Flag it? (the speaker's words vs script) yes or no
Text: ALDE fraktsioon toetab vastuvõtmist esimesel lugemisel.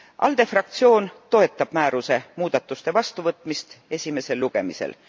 yes